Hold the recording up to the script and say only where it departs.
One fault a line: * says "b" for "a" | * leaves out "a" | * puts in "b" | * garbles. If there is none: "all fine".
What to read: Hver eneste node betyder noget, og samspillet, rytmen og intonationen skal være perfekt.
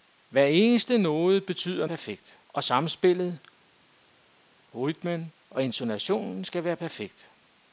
* says "perfekt" for "noget"